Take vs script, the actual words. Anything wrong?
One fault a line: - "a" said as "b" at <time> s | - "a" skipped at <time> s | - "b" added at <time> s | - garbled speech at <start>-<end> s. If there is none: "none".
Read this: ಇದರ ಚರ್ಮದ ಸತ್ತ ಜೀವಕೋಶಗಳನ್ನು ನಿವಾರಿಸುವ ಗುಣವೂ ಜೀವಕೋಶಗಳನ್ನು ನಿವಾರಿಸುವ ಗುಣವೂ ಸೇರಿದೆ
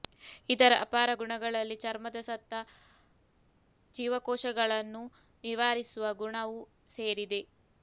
- "ಅಪಾರ ಗುಣಗಳಲ್ಲಿ" added at 0.8 s
- "ಜೀವಕೋಶಗಳನ್ನು ನಿವಾರಿಸುವ ಗುಣವೂ" skipped at 6.6 s